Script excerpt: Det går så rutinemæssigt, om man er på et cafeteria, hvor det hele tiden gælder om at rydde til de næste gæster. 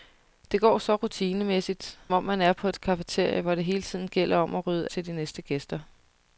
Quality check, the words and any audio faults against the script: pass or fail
pass